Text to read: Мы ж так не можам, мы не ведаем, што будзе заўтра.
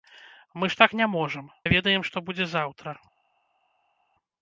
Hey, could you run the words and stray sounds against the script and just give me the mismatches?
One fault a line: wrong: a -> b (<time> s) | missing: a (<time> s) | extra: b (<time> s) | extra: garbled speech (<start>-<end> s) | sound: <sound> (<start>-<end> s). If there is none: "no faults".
missing: мы (1.5 s)